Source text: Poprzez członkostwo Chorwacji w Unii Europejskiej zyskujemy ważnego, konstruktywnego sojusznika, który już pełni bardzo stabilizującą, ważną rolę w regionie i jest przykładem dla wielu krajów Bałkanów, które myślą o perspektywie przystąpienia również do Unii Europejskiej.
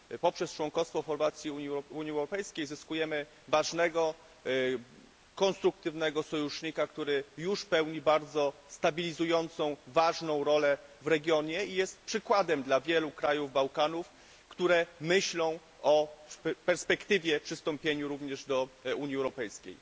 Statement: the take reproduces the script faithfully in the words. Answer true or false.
true